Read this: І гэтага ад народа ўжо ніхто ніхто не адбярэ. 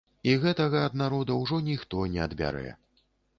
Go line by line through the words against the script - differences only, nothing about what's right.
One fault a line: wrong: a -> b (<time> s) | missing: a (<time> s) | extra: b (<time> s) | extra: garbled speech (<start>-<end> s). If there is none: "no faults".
missing: ніхто (2.1 s)